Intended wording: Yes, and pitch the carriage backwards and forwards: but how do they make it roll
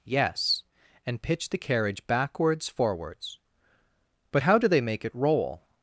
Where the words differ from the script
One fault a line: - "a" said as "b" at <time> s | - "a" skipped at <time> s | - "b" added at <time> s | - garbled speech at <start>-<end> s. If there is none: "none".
- "and" skipped at 2.7 s